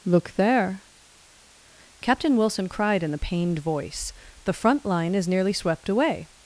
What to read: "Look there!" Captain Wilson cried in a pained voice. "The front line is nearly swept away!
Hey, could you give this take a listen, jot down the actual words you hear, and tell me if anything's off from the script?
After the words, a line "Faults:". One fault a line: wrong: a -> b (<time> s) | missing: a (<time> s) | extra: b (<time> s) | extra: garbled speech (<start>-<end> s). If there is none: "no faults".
"Look there!" Captain Wilson cried in the pained voice. "The front line is nearly swept away!
Faults:
wrong: a -> the (3.1 s)